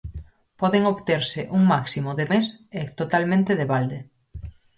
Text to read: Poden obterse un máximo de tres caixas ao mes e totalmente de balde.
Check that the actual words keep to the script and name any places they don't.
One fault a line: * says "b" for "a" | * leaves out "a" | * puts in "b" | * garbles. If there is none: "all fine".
* leaves out "tres caixas ao"